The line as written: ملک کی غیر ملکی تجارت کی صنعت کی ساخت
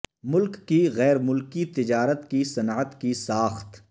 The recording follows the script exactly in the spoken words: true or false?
true